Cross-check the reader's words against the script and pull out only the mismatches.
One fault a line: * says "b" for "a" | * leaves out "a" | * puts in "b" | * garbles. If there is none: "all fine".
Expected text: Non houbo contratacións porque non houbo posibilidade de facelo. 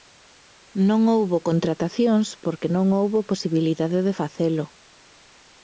all fine